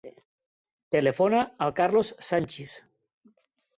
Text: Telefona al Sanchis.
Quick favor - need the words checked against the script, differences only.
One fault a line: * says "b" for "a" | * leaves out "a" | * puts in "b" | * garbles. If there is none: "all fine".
* puts in "Carlos"